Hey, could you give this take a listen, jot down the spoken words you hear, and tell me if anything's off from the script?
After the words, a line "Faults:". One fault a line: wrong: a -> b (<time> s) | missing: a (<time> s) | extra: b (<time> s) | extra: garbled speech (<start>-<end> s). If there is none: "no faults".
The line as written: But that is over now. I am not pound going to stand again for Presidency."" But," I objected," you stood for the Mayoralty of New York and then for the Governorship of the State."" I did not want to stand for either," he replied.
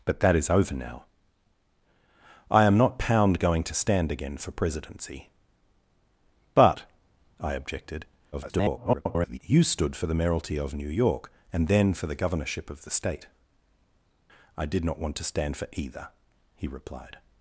But that is over now. I am not pound going to stand again for Presidency."" But," I objected," [garbled] you stood for the Mayoralty of New York and then for the Governorship of the State."" I did not want to stand for either," he replied.
Faults:
extra: garbled speech (8.3-9.4 s)